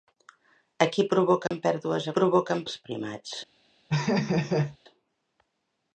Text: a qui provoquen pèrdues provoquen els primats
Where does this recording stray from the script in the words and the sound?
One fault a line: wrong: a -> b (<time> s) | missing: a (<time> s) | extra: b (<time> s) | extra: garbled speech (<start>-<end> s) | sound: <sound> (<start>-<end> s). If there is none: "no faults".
sound: dropout (1.5-1.5 s)
sound: laugh (3.9-4.8 s)